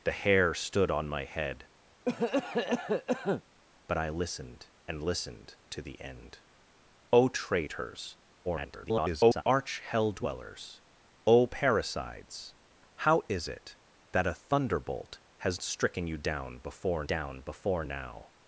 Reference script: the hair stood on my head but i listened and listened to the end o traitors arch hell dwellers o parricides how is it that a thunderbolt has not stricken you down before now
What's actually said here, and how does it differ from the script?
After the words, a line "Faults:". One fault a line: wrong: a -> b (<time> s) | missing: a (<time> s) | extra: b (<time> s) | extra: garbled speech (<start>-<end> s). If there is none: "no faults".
the hair stood on my head but i listened and listened to the end o traitors [garbled] arch hell dwellers o parricides how is it that a thunderbolt has stricken you down before down before now
Faults:
extra: garbled speech (8.4-9.4 s)
missing: not (15.6 s)
extra: down before (17.0 s)